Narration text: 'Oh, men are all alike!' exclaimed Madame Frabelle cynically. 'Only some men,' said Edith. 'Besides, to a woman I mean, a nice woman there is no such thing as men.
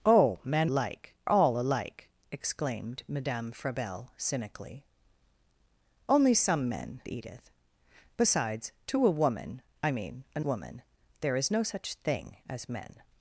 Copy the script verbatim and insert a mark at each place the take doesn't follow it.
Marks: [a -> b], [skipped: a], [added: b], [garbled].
'Oh, men [are -> alike] all alike!' exclaimed Madame Frabelle cynically. 'Only some men,' [skipped: said] Edith. 'Besides, to a woman I mean, a [skipped: nice] woman there is no such thing as men.